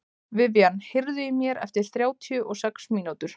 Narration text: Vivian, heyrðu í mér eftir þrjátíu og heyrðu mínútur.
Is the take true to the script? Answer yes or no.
no